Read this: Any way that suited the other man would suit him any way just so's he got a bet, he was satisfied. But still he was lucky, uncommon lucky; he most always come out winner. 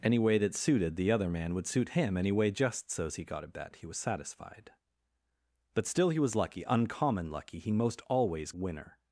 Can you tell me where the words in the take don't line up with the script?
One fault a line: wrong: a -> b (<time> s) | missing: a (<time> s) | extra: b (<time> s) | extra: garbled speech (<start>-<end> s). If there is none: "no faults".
missing: come out (8.5 s)